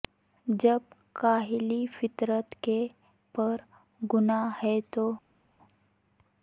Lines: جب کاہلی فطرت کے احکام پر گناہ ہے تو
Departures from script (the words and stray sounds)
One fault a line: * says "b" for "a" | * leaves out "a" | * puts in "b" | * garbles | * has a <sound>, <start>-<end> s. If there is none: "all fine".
* leaves out "احکام"